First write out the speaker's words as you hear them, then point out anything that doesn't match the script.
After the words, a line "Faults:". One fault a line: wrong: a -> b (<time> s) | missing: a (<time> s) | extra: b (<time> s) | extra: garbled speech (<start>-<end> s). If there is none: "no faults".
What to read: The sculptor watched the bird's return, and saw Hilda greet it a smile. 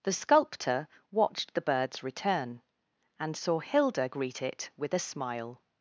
The sculptor watched the bird's return, and saw Hilda greet it with a smile.
Faults:
extra: with (4.8 s)